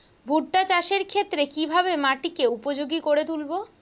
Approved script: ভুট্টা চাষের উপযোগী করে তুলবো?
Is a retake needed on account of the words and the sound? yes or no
yes